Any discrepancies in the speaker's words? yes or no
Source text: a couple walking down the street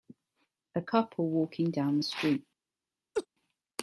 no